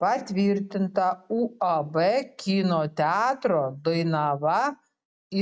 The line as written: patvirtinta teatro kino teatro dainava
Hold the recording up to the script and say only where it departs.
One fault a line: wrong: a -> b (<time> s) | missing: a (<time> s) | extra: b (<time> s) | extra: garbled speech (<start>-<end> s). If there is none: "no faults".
wrong: teatro -> uab (1.4 s)